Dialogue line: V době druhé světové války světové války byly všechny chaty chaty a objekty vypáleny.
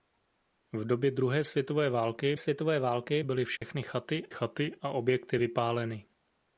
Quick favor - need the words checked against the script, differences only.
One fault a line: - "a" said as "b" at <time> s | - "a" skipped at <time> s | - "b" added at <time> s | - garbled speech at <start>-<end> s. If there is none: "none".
none